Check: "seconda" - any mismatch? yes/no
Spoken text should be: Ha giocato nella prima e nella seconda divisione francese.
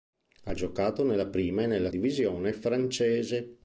yes